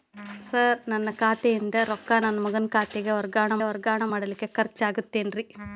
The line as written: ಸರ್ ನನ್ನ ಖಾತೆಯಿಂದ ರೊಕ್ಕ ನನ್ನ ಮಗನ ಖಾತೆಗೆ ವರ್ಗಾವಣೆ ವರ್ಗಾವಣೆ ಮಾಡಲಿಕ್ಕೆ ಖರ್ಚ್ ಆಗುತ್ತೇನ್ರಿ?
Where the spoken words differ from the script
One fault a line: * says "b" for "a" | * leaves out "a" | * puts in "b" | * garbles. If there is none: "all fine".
all fine